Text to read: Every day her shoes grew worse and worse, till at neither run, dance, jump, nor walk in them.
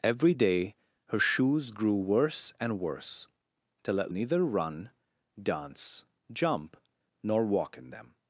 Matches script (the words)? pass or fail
pass